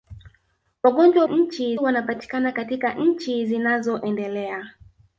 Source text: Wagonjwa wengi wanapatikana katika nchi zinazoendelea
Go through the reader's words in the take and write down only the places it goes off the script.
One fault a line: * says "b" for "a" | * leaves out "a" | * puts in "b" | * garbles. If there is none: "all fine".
* says "nchi" for "wengi"